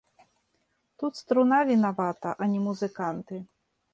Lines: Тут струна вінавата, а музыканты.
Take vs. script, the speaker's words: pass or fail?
fail